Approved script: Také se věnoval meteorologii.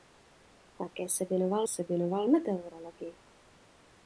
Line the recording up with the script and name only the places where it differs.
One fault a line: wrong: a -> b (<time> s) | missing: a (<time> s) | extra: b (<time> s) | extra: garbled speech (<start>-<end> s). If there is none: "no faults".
extra: se věnoval (1.7 s)